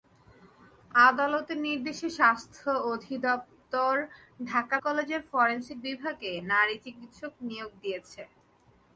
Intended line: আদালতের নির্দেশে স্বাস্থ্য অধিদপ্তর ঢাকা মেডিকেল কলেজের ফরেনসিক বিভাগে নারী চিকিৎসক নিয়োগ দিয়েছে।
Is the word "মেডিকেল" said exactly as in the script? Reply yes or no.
no